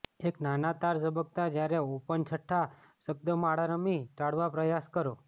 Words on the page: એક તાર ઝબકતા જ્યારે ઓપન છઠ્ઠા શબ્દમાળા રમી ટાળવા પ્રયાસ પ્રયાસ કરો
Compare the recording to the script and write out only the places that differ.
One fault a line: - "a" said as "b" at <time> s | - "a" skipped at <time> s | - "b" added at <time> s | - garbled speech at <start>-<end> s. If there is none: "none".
- "નાના" added at 0.4 s
- "પ્રયાસ" skipped at 4.9 s